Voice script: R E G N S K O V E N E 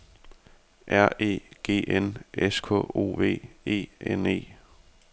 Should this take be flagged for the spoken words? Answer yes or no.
no